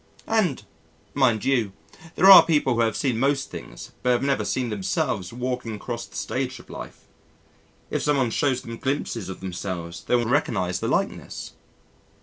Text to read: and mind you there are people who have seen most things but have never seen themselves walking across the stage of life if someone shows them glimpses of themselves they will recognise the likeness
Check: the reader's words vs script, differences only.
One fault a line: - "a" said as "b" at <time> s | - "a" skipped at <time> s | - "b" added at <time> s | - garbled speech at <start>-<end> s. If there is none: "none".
none